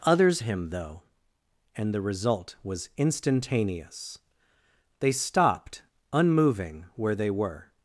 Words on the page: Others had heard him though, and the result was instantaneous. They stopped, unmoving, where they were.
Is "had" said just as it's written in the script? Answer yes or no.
no